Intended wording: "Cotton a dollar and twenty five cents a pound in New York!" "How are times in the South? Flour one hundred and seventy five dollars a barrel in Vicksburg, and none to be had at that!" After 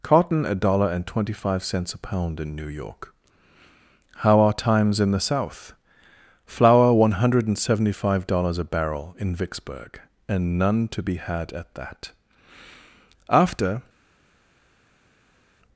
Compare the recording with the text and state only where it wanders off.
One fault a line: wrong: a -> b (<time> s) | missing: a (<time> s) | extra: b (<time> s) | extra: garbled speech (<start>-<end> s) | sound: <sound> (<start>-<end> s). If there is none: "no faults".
no faults